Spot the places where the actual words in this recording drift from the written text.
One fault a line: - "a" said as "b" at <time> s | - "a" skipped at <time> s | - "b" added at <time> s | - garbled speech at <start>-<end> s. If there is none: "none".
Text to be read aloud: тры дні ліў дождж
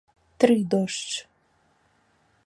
- "дні ліў" skipped at 0.6 s